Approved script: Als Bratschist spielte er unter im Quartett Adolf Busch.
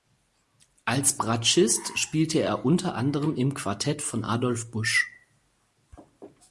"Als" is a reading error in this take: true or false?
false